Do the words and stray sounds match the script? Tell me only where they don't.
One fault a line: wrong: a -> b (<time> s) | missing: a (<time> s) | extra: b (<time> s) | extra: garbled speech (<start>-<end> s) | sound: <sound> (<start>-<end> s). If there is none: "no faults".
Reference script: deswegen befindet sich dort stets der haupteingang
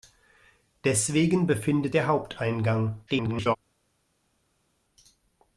missing: sich dort stets (1.9 s)
extra: garbled speech (3.1-3.6 s)